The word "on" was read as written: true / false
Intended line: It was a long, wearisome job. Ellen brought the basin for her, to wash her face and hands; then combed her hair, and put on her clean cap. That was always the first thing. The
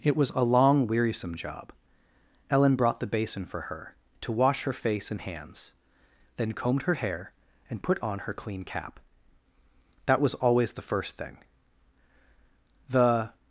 true